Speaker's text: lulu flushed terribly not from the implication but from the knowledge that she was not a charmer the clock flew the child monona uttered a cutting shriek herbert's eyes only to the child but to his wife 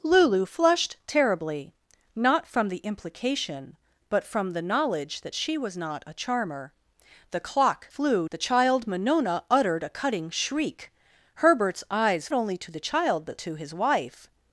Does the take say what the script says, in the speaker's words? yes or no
yes